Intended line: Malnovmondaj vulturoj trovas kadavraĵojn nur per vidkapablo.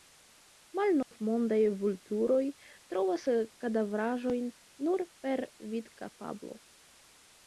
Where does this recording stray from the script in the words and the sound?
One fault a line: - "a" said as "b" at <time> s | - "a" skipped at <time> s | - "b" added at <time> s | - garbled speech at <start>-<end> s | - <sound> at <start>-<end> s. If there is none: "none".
- dropout at 1.0-1.1 s